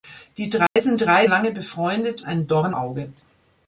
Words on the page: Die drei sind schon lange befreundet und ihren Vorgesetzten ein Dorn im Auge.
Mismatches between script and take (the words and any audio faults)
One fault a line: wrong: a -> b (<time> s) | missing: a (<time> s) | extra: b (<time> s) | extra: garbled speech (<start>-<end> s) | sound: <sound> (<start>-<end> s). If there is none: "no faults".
sound: dropout (0.7-0.8 s)
wrong: schon -> drei (1.0 s)
missing: und ihren Vorgesetzten (2.2 s)
missing: im (2.8 s)